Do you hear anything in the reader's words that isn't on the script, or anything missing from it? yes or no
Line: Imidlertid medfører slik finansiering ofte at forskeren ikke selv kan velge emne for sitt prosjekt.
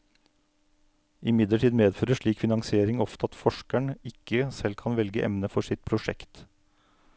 no